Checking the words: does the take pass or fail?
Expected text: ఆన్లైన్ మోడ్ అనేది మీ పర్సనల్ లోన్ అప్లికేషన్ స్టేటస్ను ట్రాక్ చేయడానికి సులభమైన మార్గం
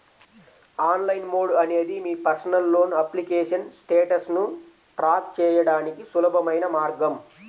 pass